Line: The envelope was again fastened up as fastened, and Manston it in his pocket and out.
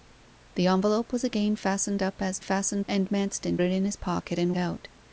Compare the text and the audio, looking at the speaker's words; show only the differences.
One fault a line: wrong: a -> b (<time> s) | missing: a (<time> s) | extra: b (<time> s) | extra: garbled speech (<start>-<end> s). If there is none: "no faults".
no faults